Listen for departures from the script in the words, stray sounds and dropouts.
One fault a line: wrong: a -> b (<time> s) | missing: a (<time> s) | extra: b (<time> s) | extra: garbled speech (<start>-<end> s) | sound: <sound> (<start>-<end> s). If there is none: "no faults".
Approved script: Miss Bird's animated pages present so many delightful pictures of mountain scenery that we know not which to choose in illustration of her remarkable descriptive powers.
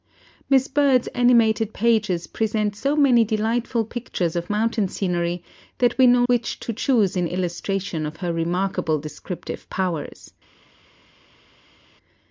missing: not (6.2 s)